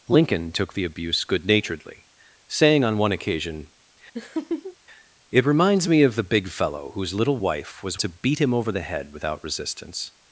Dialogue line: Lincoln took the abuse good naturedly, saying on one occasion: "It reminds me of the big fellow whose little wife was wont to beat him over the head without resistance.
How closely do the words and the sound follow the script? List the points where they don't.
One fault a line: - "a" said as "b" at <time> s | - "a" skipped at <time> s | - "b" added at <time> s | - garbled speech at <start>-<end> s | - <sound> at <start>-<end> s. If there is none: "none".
- laugh at 4.1-4.8 s
- "wont" skipped at 8.0 s